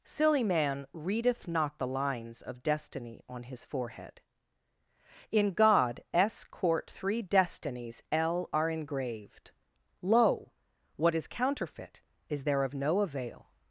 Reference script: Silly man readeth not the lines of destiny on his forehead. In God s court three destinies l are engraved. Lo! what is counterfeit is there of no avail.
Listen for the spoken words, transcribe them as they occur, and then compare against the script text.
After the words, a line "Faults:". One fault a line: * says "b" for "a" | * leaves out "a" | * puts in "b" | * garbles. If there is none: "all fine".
Silly man readeth not the lines of destiny on his forehead. In God s court three destinies l are engraved. Lo! what is counterfeit is there of no avail.
Faults:
all fine